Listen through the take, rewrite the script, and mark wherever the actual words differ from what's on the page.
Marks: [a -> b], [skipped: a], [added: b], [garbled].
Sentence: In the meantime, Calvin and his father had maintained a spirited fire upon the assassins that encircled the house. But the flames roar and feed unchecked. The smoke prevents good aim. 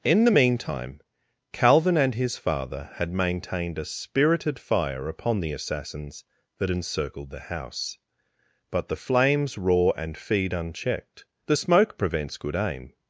In the meantime, Calvin and his father had maintained a spirited fire upon the assassins that encircled the house. But the flames roar and feed unchecked. The smoke prevents good aim.